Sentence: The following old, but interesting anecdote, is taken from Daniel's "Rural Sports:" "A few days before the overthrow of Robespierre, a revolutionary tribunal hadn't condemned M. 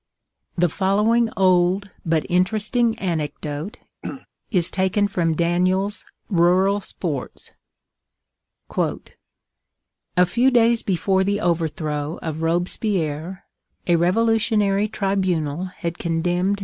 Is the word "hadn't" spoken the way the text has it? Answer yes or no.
no